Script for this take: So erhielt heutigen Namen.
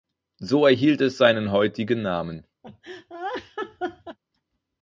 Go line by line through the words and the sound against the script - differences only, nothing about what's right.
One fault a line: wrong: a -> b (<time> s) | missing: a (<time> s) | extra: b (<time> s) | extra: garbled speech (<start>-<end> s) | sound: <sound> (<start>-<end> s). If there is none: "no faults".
extra: es seinen (1.0 s)
sound: laugh (2.6-4.2 s)